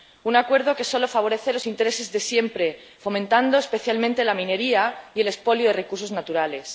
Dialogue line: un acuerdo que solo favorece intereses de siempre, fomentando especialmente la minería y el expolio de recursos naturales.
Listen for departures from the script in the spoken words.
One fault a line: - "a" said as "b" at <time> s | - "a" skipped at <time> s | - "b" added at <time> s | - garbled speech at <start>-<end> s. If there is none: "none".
- "los" added at 1.5 s